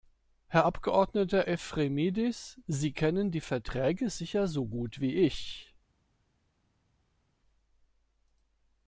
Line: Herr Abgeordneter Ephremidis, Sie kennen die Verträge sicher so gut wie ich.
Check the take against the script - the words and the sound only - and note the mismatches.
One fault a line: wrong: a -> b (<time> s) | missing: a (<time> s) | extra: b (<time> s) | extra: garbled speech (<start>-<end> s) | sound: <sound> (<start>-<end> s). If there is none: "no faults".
no faults